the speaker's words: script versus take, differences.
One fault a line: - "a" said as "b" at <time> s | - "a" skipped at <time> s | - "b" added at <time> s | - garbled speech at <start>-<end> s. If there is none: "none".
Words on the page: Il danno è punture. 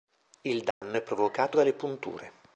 - "provocato dalle" added at 1.0 s